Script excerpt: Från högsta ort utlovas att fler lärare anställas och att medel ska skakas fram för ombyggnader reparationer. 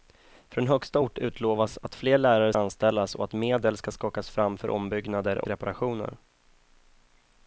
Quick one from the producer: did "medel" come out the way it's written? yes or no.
yes